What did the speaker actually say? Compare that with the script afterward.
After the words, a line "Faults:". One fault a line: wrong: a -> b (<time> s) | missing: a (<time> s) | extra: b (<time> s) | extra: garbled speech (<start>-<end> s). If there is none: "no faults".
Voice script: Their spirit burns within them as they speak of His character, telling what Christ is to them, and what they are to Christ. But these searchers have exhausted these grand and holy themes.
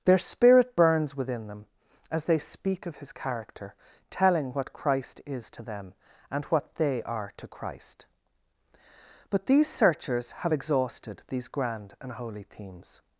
Their spirit burns within them as they speak of His character, telling what Christ is to them, and what they are to Christ. But these searchers have exhausted these grand and holy themes.
Faults:
no faults